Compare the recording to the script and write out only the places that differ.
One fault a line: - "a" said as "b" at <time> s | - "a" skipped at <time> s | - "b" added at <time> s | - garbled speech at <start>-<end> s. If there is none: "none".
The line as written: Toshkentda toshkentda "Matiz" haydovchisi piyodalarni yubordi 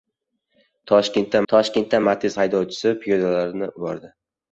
none